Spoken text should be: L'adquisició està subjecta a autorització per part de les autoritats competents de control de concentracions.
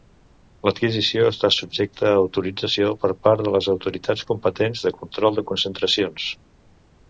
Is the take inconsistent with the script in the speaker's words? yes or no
no